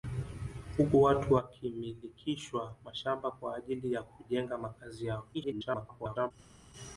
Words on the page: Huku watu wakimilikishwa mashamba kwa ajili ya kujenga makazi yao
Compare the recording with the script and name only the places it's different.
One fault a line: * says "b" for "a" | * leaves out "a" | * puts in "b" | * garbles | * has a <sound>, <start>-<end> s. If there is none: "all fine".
* garbles